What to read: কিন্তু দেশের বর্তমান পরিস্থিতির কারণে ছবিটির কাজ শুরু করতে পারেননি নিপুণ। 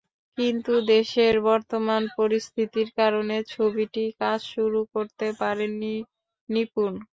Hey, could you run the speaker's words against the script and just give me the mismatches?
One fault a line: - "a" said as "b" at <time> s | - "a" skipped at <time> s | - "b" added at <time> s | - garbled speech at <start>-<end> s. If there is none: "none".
none